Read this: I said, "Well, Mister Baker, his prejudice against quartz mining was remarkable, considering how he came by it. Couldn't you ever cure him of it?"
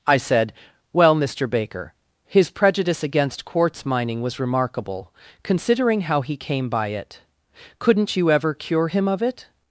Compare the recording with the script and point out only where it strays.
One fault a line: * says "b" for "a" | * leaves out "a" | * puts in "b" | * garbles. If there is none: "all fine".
all fine